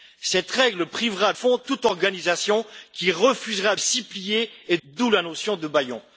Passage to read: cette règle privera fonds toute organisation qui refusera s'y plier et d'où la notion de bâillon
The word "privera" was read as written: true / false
true